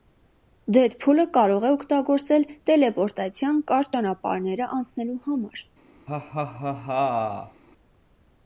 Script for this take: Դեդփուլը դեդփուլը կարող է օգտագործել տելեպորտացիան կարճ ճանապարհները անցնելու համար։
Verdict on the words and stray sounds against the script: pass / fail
fail